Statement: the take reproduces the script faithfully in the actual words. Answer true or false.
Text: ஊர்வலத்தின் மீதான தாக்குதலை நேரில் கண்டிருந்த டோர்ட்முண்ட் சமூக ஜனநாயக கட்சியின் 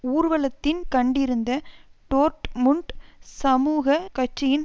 false